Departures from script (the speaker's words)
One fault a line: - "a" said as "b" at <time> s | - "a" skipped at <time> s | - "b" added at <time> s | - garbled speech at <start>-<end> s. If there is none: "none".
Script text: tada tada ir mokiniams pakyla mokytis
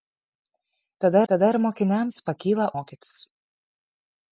none